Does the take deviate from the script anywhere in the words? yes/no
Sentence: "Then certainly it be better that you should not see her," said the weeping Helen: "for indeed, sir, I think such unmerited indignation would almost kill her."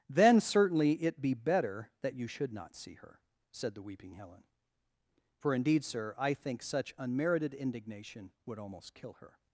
no